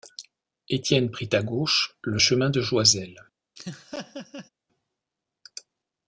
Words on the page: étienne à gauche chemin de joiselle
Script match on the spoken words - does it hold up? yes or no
no